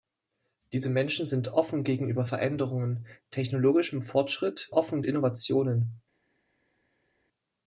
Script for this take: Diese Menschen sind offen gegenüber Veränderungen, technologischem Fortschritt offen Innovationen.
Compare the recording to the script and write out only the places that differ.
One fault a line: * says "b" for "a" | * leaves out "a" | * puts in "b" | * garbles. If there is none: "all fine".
all fine